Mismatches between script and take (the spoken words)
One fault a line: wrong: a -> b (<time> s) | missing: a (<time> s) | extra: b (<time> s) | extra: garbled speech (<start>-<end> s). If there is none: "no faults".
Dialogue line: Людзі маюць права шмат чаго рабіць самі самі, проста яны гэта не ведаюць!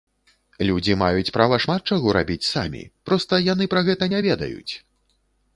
missing: самі (2.8 s)
extra: пра (3.8 s)